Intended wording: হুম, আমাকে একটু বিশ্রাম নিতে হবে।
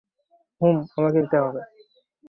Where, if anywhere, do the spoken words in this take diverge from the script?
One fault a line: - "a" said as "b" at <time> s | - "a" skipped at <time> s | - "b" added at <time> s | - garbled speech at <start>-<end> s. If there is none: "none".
- "একটু বিশ্রাম" skipped at 1.2 s